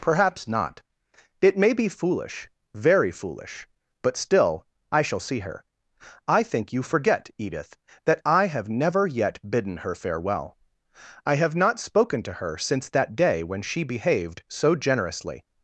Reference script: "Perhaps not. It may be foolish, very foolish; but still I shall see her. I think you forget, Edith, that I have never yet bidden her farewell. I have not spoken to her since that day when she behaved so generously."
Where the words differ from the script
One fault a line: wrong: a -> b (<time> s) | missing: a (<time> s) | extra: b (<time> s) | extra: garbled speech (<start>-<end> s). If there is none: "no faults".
no faults